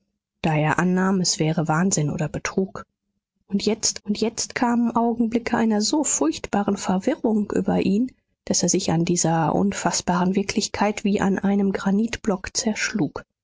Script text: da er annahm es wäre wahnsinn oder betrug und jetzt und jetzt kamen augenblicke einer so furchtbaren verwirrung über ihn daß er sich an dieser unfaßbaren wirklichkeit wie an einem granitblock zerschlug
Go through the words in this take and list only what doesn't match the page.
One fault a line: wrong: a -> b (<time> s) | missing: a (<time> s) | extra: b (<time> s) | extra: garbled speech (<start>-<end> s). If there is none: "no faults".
no faults